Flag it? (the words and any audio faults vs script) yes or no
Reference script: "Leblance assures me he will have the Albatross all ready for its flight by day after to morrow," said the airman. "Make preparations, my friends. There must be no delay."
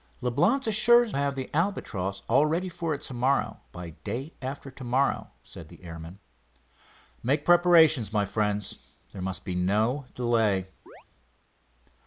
yes